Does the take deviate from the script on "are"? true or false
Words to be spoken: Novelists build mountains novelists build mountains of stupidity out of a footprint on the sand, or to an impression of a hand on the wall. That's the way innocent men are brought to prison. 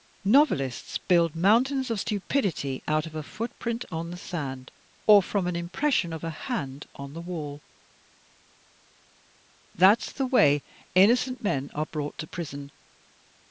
false